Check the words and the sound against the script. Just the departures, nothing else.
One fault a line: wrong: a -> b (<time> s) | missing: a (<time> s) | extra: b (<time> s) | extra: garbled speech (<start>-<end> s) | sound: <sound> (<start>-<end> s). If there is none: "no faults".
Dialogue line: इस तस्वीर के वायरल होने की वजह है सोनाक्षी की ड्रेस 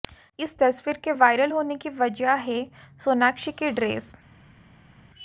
no faults